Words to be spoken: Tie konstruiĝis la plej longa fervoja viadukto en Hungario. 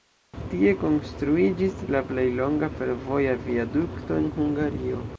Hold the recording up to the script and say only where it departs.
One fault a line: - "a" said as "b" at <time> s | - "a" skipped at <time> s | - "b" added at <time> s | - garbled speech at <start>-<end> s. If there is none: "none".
none